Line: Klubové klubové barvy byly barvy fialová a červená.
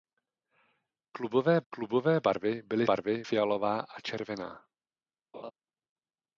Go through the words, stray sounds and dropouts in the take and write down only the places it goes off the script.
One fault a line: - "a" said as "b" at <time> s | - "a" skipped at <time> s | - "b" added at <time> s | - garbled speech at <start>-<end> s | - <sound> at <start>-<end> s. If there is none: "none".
- laugh at 5.3-5.5 s